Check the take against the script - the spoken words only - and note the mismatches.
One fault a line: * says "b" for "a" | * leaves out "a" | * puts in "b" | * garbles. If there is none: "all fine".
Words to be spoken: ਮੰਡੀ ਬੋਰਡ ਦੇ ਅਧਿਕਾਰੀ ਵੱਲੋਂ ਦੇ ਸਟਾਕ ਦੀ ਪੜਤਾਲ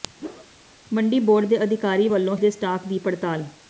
all fine